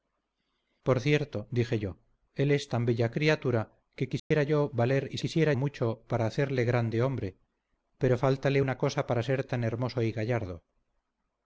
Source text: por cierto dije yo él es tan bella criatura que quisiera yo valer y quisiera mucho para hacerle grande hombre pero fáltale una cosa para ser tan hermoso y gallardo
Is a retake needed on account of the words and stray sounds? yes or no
yes